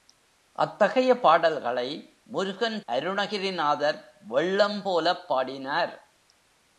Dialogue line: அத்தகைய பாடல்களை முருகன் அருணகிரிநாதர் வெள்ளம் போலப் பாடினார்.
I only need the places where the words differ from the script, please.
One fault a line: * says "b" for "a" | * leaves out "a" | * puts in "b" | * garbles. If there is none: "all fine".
all fine